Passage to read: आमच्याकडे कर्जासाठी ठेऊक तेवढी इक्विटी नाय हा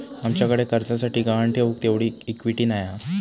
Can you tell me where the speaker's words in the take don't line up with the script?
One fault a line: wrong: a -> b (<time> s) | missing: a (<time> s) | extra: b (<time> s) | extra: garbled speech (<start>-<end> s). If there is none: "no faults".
extra: गहाण (1.2 s)